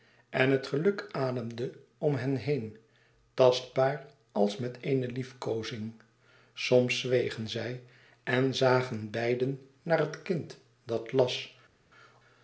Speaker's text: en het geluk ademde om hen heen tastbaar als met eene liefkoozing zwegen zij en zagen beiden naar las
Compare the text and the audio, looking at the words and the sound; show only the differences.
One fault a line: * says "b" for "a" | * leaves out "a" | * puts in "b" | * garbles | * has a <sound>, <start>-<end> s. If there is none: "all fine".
* puts in "soms"
* puts in "het kind dat"